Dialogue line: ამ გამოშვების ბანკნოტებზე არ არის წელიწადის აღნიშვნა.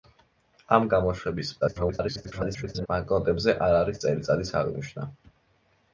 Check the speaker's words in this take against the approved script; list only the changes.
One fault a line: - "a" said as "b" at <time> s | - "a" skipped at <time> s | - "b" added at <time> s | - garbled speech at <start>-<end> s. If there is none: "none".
- garbled speech at 1.6-2.9 s